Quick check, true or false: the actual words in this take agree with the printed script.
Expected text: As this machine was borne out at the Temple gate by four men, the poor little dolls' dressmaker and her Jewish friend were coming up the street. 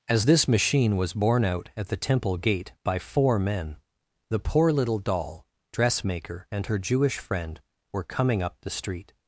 false